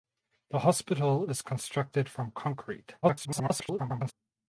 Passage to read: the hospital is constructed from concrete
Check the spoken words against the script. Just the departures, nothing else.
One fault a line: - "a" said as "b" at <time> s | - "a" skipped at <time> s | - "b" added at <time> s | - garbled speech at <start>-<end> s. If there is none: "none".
- garbled speech at 3.0-4.1 s